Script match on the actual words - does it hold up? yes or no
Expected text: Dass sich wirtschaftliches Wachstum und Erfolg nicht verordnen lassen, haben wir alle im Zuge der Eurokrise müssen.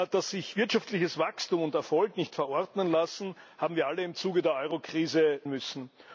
yes